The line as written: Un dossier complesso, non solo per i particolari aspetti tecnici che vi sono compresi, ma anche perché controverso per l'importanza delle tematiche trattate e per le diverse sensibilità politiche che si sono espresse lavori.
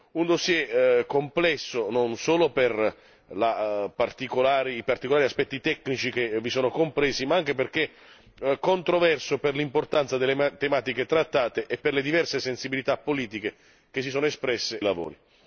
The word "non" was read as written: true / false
true